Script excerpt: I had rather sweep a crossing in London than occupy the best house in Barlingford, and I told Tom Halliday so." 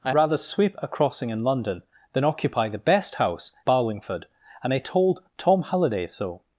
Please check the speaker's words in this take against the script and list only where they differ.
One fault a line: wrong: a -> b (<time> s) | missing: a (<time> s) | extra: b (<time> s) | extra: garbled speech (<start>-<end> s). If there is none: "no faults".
missing: had (0.1 s)
missing: in (3.5 s)